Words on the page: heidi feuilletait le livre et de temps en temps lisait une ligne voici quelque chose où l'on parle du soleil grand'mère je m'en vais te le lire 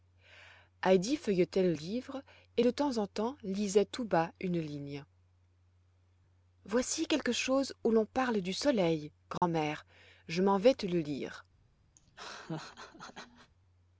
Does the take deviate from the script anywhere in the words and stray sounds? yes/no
yes